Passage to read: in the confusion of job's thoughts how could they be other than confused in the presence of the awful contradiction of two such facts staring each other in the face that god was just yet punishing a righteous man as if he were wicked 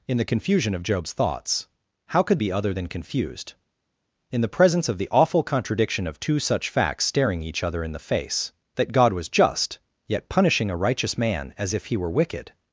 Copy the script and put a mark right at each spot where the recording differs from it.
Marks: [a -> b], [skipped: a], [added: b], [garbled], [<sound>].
in the confusion of job's thoughts how could [skipped: they] be other than confused in the presence of the awful contradiction of two such facts staring each other in the face that god was just yet punishing a righteous man as if he were wicked